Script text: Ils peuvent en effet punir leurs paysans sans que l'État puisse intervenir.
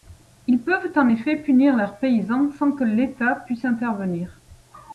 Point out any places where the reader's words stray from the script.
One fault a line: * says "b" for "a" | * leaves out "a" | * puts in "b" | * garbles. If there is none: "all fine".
all fine